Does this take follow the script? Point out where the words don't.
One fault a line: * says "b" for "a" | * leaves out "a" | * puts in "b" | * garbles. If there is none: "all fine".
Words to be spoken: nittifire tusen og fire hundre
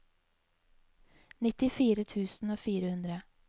all fine